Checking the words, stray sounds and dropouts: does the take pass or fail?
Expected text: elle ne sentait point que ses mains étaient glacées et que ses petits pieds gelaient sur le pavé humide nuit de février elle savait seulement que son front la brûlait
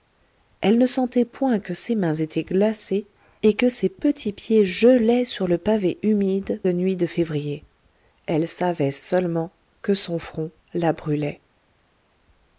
pass